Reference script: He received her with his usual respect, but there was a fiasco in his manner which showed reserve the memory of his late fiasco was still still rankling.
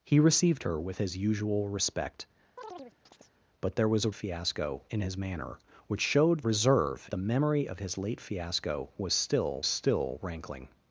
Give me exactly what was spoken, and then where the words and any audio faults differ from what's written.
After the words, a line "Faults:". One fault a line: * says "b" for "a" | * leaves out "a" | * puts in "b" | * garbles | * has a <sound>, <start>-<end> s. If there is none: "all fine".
He received her with his usual respect, but there was a fiasco in his manner which showed reserve the memory of his late fiasco was still still rankling.
Faults:
* has a chirp, 2.6-3.4 s